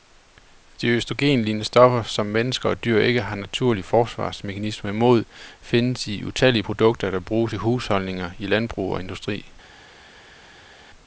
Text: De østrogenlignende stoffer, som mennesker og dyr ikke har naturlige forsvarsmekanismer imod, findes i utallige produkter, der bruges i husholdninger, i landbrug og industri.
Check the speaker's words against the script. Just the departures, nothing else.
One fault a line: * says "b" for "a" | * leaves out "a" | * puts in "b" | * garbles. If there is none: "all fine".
all fine